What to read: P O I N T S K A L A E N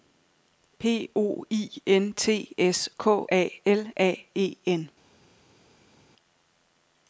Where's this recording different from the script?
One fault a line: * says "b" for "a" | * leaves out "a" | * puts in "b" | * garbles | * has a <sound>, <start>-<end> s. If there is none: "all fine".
all fine